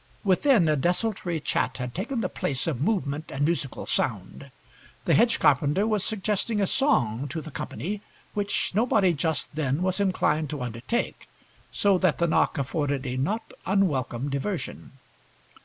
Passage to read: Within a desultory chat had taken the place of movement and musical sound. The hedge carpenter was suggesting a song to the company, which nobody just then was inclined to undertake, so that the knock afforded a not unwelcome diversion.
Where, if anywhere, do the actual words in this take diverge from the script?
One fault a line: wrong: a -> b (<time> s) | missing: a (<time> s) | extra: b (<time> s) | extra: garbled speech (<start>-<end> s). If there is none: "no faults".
no faults